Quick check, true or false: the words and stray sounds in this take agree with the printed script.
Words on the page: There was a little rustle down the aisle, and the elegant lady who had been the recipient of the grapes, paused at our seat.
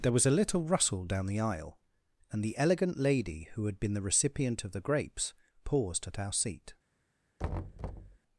false